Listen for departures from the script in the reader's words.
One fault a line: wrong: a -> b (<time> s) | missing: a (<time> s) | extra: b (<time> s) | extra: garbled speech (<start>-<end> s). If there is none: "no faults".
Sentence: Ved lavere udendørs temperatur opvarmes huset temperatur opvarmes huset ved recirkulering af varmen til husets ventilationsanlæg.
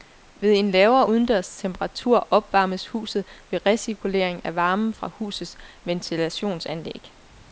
extra: en (0.5 s)
missing: temperatur opvarmes huset (3.2 s)
wrong: til -> fra (4.9 s)